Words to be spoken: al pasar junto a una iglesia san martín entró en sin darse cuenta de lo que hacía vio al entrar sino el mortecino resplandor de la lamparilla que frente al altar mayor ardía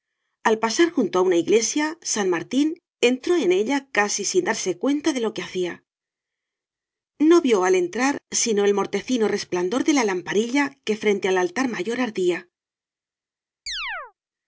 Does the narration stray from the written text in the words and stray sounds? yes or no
yes